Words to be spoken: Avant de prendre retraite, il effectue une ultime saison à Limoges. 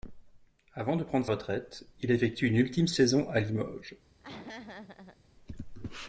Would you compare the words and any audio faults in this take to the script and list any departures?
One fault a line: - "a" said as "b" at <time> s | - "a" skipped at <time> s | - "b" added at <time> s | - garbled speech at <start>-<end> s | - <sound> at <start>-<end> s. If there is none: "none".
- laugh at 4.2-5.2 s